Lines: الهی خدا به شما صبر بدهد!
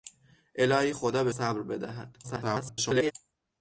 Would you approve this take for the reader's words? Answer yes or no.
no